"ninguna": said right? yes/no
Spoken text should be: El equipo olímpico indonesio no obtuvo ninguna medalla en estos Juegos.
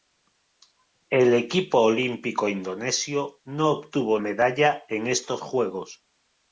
no